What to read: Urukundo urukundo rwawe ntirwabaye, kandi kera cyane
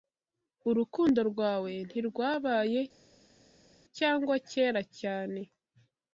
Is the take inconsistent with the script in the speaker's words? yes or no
yes